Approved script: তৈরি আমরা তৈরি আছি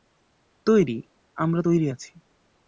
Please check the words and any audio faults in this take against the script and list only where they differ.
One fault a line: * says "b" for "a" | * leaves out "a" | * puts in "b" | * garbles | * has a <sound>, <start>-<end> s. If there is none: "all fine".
all fine